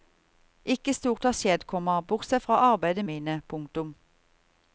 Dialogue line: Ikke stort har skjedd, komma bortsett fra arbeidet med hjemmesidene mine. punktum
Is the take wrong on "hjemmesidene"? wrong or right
wrong